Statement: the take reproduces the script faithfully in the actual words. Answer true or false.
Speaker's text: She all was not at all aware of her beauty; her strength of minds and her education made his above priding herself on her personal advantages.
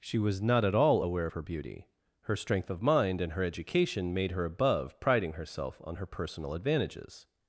false